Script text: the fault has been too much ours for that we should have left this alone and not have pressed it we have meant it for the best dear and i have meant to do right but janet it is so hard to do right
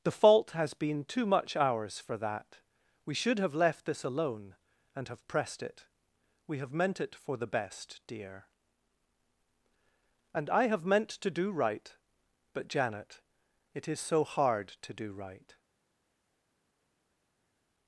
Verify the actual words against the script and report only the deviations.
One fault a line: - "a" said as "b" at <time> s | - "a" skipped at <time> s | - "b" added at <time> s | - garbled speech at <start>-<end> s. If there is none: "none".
- "not" skipped at 5.1 s